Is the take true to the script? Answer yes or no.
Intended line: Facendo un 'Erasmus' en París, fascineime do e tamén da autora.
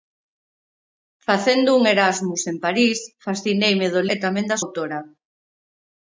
yes